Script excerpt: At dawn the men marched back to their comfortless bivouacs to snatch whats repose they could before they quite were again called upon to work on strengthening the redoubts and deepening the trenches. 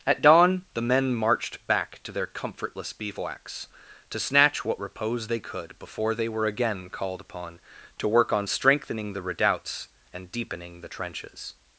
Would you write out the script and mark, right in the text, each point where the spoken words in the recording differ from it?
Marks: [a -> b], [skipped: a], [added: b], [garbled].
At dawn the men marched back to their comfortless bivouacs to snatch [whats -> what] repose they could before they [skipped: quite] were again called upon to work on strengthening the redoubts and deepening the trenches.